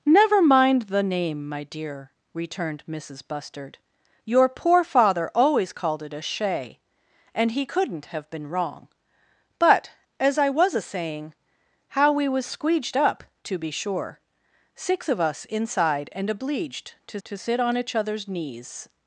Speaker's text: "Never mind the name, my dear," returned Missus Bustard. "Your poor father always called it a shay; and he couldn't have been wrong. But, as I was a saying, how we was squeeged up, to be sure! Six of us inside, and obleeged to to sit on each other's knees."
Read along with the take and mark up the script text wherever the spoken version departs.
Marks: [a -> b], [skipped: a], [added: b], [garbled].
"Never mind the name, my dear," returned Missus Bustard. "Your poor father always called it a shay; and he couldn't have been wrong. But, as I was a saying, how we was squeeged up, to be sure! Six of us inside, and obleeged to to sit on each other's knees."